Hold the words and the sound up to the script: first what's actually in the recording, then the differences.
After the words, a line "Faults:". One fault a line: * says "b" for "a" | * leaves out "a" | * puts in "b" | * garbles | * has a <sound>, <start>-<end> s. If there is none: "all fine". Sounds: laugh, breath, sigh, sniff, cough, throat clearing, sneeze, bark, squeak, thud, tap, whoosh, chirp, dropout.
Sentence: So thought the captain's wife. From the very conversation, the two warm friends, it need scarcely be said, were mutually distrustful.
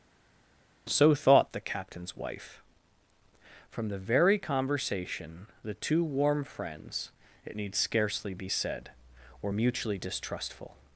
So thought the captain's wife. From the very conversation, the two warm friends, it need scarcely be said, were mutually distrustful.
Faults:
all fine